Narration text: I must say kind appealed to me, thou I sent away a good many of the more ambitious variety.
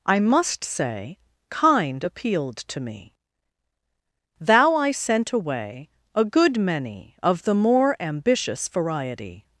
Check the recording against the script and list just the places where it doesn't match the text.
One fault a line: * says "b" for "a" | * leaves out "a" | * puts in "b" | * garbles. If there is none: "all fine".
all fine